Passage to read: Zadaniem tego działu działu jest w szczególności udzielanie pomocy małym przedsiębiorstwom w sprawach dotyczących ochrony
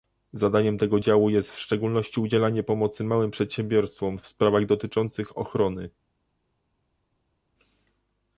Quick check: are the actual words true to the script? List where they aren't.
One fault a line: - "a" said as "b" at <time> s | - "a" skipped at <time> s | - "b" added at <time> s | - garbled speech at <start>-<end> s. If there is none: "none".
- "działu" skipped at 1.3 s